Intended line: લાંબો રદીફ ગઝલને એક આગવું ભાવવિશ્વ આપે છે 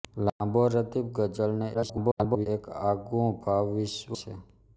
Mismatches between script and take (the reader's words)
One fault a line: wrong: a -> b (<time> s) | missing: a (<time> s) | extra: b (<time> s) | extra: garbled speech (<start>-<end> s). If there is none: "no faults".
extra: garbled speech (1.7-2.5 s)
missing: આપે (4.1 s)